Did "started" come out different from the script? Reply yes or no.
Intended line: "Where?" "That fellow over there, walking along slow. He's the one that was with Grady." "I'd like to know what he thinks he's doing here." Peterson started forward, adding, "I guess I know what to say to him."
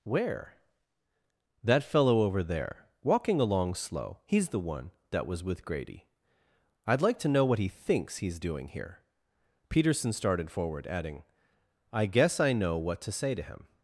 no